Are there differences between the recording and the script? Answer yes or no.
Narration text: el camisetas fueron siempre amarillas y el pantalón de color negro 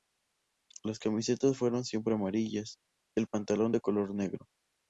yes